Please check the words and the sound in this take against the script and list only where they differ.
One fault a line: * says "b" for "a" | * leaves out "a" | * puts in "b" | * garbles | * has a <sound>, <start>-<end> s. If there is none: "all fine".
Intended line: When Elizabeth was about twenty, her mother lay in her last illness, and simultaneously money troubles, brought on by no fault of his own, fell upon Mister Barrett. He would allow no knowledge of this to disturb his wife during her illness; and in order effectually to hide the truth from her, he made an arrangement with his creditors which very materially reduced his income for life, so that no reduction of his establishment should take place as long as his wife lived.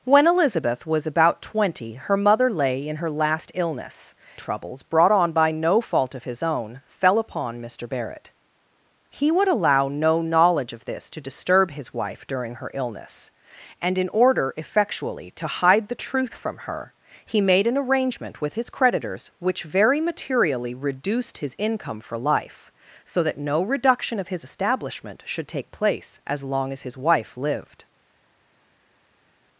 * leaves out "and simultaneously money"